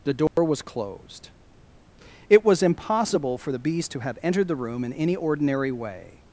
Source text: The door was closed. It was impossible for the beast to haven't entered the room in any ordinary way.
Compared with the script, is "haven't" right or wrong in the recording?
wrong